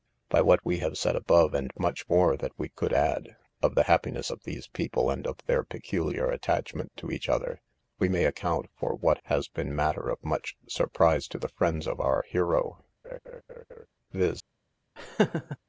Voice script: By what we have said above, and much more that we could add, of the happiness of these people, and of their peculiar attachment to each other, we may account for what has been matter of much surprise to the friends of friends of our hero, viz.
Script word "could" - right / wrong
right